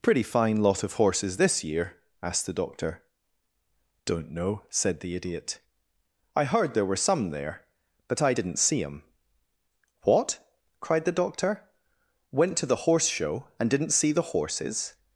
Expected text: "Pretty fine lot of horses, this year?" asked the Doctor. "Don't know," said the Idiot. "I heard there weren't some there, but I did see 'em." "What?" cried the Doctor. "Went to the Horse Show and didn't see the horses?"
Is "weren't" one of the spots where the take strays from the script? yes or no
yes